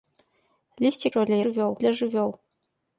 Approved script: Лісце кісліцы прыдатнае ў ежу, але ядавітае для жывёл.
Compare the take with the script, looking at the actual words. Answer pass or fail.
fail